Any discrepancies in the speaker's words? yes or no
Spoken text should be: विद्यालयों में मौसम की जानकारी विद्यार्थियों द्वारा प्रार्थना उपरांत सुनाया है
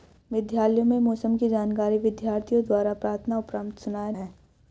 no